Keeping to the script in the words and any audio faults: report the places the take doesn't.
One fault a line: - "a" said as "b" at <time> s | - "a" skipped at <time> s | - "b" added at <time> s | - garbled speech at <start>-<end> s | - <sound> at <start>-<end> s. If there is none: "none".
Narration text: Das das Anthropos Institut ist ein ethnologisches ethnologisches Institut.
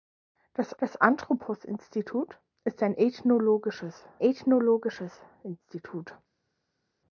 none